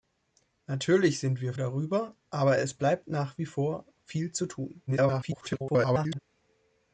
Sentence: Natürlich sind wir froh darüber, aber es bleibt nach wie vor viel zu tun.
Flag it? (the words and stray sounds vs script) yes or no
yes